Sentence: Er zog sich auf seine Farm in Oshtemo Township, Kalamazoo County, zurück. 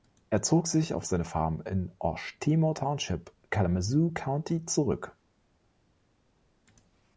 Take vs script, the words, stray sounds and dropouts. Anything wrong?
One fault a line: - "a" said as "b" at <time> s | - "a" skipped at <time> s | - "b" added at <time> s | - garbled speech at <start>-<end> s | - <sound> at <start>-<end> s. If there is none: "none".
none